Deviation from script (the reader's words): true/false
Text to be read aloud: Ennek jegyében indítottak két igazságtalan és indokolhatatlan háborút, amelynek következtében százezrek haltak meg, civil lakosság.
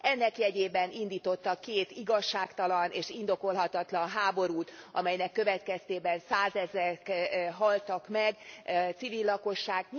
false